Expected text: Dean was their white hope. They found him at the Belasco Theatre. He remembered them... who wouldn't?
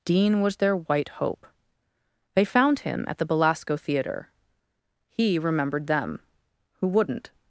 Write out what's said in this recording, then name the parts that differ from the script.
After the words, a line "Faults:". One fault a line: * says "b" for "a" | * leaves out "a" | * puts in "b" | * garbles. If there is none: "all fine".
Dean was their white hope. They found him at the Belasco Theatre. He remembered them... who wouldn't?
Faults:
all fine